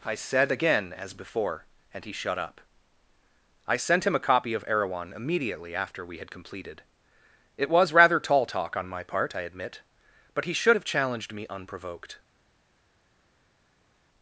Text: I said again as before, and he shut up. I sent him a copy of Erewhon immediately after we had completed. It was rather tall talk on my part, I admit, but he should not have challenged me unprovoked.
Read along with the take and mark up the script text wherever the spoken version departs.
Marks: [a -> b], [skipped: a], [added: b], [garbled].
I said again as before, and he shut up. I sent him a copy of Erewhon immediately after we had completed. It was rather tall talk on my part, I admit, but he should [skipped: not] have challenged me unprovoked.